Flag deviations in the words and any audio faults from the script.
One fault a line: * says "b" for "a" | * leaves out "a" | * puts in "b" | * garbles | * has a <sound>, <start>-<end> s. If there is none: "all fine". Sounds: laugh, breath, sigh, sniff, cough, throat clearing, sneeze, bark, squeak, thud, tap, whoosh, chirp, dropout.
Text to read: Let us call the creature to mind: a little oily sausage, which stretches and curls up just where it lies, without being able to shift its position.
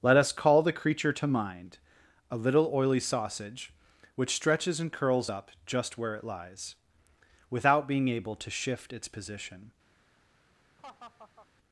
* has a laugh, 10.8-11.5 s